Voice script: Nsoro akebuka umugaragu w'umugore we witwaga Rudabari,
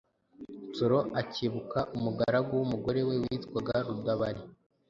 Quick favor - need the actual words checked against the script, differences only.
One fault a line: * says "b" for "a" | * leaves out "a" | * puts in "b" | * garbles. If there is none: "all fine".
all fine